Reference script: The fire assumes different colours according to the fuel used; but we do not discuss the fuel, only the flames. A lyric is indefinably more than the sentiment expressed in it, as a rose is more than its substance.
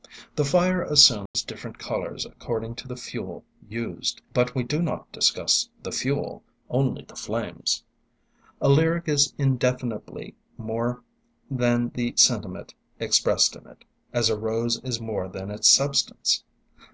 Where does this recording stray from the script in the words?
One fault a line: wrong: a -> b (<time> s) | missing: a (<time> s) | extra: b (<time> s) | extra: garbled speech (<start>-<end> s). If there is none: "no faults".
no faults